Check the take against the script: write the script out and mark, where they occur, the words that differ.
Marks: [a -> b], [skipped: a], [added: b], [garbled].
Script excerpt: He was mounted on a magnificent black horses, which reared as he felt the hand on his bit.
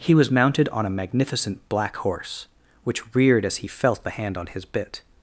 He was mounted on a magnificent black [horses, -> horse] which reared as he felt the hand on his bit.